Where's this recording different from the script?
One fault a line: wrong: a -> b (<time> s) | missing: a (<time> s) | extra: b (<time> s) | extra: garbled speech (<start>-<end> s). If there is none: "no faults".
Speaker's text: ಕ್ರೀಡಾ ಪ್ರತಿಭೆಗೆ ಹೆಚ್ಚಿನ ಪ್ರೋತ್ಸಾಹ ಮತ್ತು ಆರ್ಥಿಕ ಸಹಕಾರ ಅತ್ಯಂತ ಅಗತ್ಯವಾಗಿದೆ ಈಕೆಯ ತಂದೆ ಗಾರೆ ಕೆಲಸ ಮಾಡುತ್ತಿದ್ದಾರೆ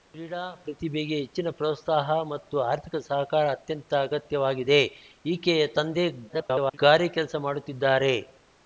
extra: garbled speech (6.3-6.8 s)